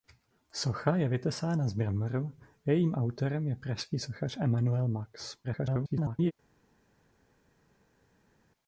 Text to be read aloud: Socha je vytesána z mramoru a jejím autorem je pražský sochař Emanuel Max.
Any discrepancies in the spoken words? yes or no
yes